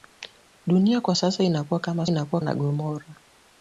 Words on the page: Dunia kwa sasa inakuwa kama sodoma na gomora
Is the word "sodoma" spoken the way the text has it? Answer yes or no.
no